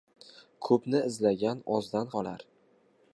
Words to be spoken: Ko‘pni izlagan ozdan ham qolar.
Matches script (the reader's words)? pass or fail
fail